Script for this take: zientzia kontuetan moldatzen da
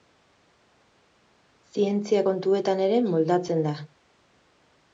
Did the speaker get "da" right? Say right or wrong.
right